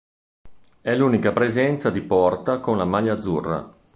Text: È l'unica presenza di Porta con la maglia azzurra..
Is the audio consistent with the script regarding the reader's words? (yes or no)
yes